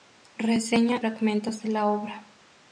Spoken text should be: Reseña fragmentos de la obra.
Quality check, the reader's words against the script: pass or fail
pass